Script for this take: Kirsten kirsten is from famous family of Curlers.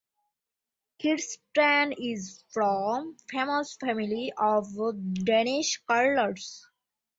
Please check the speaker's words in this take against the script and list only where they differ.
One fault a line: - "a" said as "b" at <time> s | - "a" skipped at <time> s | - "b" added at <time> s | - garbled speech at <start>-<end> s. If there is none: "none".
- "kirsten" skipped at 1.9 s
- "Danish" added at 5.1 s